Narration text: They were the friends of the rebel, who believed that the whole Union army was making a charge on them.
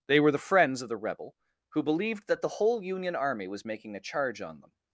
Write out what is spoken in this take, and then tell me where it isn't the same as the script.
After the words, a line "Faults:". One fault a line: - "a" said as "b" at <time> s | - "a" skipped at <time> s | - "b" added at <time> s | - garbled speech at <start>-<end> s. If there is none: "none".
They were the friends of the rebel, who believed that the whole Union army was making a charge on them.
Faults:
none